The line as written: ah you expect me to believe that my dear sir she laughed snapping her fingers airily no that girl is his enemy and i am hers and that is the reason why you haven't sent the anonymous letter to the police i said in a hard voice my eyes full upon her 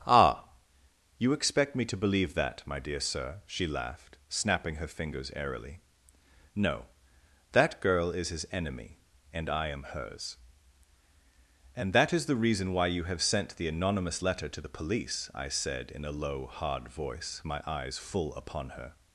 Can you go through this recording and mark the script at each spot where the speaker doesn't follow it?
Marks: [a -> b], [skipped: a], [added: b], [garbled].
ah you expect me to believe that my dear sir she laughed snapping her fingers airily no that girl is his enemy and i am hers and that is the reason why you [haven't -> have] sent the anonymous letter to the police i said in a [added: low] hard voice my eyes full upon her